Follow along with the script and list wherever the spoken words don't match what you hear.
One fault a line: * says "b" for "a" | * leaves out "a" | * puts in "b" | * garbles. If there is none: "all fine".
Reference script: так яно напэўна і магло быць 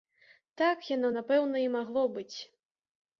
all fine